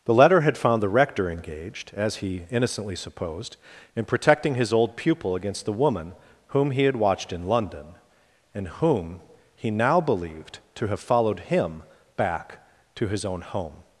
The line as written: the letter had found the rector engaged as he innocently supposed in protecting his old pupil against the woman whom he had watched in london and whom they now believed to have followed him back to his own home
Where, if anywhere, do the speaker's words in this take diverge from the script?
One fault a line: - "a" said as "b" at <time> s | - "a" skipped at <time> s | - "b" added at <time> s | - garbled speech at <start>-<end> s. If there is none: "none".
- "they" said as "he" at 9.5 s